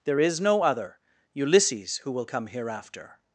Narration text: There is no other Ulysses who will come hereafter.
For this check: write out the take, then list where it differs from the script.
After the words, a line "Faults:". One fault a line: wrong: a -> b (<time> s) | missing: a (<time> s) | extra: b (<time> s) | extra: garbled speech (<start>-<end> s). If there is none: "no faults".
There is no other Ulysses who will come hereafter.
Faults:
no faults